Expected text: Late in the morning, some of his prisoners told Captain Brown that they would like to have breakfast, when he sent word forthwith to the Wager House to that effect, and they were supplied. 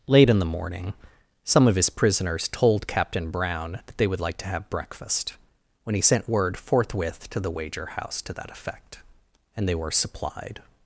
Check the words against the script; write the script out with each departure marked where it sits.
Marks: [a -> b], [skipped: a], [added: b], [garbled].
Late in the morning, some of his prisoners told Captain Brown that they would like to have breakfast, when he sent word forthwith to the Wager House to that effect, and they were supplied.